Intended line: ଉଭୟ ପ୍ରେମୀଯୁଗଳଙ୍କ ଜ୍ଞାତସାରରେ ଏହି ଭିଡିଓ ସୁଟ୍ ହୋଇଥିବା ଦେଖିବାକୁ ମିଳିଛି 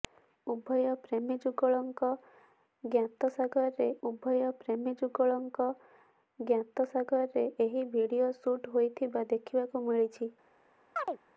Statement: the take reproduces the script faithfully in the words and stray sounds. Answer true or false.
false